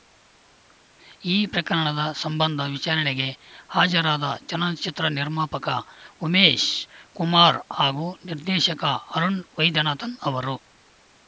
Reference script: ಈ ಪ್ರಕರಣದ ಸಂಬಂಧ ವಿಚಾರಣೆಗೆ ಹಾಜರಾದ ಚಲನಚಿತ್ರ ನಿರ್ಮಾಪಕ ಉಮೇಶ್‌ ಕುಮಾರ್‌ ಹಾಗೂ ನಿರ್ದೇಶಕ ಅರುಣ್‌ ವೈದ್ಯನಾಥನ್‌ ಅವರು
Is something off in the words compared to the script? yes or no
no